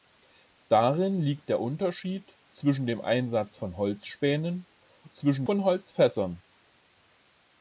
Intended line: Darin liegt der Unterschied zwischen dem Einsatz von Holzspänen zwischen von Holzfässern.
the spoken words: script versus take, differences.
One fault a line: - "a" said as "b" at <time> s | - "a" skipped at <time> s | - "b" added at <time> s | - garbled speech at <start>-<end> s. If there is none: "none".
none